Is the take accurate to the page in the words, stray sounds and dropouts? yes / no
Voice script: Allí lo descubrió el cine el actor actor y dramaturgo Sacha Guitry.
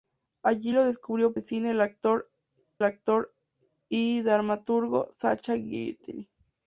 yes